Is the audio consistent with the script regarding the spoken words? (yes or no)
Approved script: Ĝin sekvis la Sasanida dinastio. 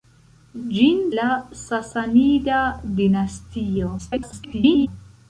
no